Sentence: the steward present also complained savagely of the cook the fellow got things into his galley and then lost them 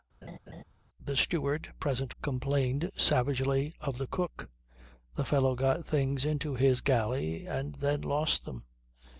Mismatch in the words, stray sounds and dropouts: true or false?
true